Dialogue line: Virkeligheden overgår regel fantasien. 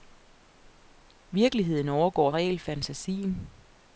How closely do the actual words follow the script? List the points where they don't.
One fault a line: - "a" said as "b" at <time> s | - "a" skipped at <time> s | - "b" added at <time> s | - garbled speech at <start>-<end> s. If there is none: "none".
none